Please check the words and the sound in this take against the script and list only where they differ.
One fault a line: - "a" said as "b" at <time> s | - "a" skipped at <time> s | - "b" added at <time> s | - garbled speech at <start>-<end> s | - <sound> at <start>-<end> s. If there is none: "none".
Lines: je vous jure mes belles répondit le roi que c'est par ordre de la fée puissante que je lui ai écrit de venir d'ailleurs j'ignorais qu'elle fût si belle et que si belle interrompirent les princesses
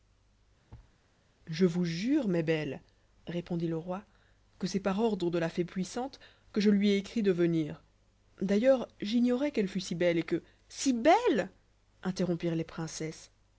- thud at 0.7-1.0 s